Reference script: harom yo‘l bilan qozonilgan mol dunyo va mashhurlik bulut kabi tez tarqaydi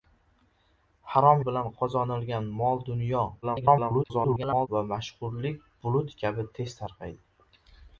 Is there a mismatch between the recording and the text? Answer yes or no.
yes